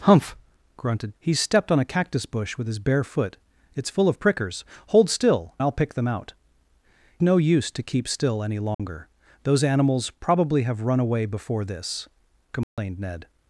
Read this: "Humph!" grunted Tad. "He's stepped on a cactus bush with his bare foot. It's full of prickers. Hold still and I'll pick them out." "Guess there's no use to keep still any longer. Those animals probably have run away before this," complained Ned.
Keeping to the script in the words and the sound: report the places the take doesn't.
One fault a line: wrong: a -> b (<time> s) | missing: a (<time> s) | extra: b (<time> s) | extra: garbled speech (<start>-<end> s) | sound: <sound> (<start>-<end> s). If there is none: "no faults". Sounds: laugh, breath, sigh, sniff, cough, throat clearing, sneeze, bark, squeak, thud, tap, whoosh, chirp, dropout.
missing: Tad (1.1 s)
missing: and (5.5 s)
missing: Guess there's (6.3 s)
sound: dropout (8.7-8.8 s)
sound: dropout (12.6-12.8 s)